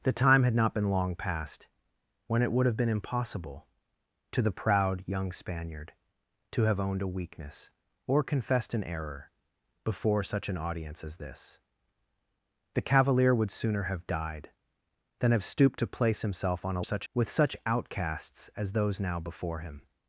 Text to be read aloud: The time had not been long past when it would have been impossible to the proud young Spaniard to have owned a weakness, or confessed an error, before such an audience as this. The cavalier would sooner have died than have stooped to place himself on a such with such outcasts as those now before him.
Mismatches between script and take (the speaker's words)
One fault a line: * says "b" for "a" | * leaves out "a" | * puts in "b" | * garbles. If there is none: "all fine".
all fine